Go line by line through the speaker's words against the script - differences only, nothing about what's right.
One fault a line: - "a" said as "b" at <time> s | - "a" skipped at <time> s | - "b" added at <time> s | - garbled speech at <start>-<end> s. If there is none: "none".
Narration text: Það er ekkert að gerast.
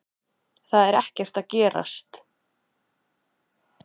none